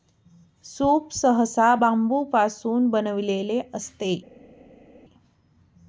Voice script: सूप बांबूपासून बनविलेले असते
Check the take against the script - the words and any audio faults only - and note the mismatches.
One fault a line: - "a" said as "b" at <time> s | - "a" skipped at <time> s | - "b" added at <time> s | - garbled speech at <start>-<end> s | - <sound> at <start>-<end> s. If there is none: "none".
- "सहसा" added at 1.1 s